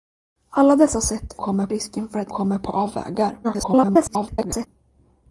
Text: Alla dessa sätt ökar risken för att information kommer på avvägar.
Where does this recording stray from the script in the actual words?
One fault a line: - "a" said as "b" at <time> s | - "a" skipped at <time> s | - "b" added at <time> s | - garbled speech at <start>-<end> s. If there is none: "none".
- "ökar" said as "kommer" at 1.4 s
- "information" skipped at 2.3 s
- garbled speech at 3.4-4.7 s